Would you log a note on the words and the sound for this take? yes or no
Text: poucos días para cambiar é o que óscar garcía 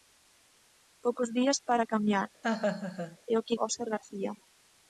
yes